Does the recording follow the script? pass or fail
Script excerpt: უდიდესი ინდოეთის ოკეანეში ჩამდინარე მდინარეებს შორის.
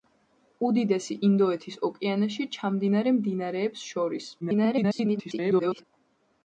fail